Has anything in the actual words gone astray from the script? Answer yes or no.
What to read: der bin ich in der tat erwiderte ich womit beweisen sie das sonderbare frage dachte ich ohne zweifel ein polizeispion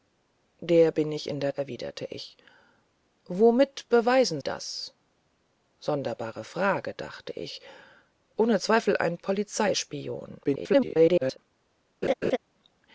yes